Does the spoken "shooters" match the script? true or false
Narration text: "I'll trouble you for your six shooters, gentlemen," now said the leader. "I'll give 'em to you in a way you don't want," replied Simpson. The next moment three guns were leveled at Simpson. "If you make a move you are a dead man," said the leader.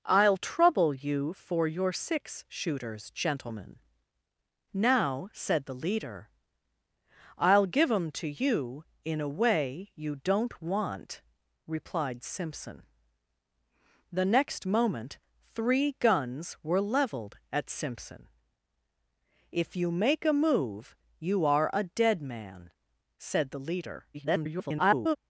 true